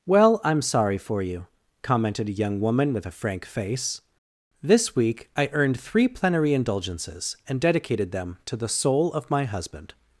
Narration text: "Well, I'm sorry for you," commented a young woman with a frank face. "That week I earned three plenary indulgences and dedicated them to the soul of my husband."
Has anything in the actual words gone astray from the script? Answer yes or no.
yes